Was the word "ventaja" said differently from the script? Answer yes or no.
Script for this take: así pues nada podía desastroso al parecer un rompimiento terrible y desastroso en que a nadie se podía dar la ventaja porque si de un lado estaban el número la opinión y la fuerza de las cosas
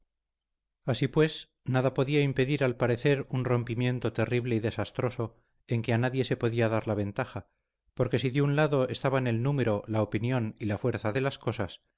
no